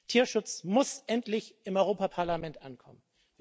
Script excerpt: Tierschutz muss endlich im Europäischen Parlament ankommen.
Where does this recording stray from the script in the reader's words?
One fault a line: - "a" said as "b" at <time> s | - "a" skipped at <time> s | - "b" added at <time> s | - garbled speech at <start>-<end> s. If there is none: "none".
none